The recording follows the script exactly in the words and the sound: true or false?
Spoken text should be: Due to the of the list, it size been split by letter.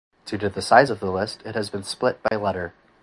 false